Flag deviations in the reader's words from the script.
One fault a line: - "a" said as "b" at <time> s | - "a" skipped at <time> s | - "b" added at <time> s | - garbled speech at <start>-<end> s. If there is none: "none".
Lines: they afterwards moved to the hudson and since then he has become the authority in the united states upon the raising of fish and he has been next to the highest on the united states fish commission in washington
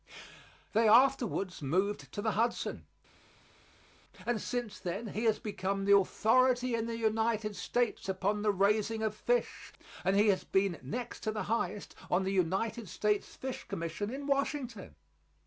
none